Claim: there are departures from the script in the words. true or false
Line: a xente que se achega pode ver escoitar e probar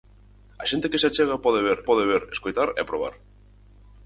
true